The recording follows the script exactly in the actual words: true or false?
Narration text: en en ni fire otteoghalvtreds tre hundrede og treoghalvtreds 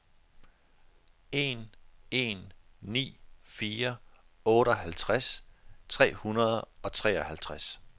true